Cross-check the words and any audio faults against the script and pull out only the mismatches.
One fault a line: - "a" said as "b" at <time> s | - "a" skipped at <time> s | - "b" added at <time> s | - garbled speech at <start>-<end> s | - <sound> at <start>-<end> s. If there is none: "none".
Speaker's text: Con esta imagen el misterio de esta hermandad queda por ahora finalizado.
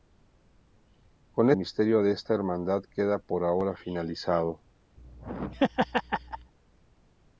- "esta imagen el" skipped at 1.5 s
- laugh at 5.0-6.5 s